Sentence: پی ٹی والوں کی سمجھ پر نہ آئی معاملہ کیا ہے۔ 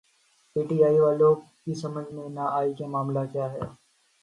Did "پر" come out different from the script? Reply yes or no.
yes